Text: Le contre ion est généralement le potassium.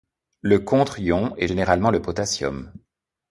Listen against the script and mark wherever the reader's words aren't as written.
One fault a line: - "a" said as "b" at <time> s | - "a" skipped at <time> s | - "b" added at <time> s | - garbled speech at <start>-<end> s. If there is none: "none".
none